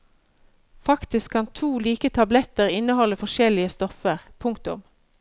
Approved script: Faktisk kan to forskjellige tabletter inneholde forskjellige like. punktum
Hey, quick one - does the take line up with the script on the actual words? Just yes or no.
no